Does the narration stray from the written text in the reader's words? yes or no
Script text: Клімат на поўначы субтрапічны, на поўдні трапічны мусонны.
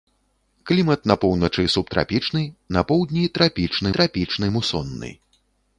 yes